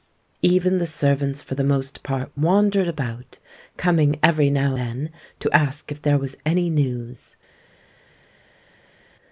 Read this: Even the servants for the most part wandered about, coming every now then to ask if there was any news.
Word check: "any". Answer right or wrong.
right